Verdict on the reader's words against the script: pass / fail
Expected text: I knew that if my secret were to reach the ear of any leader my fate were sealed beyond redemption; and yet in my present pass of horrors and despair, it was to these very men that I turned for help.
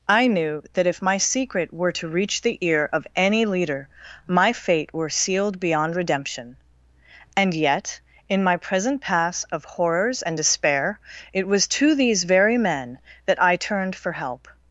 pass